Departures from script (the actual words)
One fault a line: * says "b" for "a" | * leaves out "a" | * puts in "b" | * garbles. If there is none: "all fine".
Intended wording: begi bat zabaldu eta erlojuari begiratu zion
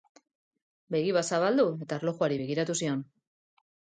all fine